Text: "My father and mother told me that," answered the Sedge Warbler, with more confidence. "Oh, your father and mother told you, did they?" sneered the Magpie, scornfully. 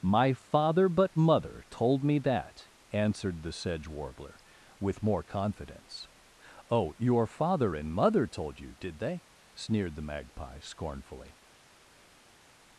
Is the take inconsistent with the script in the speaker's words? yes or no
yes